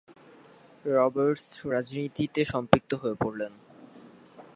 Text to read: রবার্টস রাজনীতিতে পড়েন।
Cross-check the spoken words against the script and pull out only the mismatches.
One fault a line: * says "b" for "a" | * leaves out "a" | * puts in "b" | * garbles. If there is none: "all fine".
* puts in "সম্পৃক্ত হয়ে"